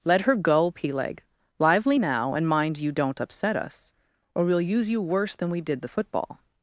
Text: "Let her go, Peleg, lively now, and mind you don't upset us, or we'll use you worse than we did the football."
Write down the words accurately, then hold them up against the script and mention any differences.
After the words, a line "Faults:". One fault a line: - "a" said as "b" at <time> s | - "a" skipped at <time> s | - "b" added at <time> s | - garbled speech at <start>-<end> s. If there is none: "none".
"Let her go, Peleg, lively now, and mind you don't upset us, or we'll use you worse than we did the football."
Faults:
none